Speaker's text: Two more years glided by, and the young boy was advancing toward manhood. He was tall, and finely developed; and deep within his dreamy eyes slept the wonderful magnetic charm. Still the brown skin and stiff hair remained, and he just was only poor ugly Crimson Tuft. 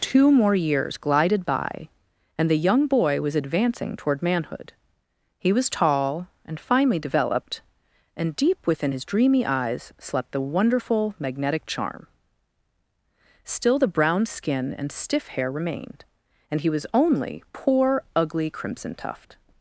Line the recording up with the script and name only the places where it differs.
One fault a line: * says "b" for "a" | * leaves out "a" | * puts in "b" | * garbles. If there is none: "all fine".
* leaves out "just"